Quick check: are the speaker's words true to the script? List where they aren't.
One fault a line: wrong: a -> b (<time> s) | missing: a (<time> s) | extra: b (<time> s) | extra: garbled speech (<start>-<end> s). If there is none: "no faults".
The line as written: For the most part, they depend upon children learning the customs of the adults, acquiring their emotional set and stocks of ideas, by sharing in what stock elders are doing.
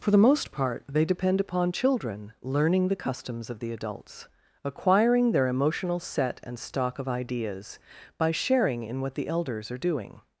wrong: stocks -> stock (6.6 s)
wrong: stock -> the (9.1 s)